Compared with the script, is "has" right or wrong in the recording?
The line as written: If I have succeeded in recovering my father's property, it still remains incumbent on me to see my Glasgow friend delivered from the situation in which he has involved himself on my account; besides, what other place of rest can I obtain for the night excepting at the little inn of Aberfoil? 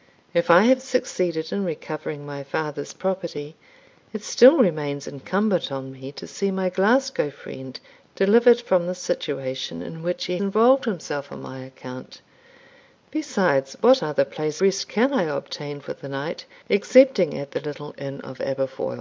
wrong